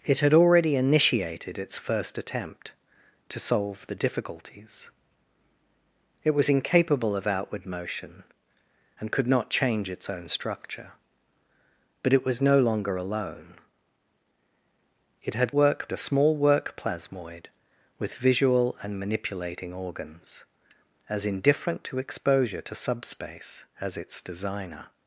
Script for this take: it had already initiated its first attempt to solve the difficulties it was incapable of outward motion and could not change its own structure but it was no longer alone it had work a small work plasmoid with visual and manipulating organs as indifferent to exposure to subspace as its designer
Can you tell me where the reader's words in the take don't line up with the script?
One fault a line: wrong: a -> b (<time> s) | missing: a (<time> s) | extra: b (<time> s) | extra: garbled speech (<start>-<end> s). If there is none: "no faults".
no faults